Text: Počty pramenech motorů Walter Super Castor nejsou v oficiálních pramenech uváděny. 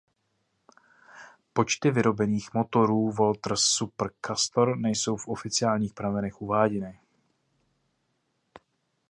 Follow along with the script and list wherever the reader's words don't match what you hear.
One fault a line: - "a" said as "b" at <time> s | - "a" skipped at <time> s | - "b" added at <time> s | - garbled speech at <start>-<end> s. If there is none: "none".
- "pramenech" said as "vyrobených" at 1.9 s